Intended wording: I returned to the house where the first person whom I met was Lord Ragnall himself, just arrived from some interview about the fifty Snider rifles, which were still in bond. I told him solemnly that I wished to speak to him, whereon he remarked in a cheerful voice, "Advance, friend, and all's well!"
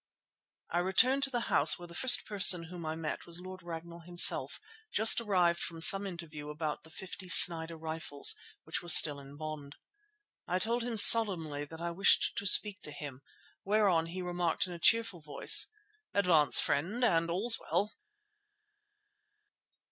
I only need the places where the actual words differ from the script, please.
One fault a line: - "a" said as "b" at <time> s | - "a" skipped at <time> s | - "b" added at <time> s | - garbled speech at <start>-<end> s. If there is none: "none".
none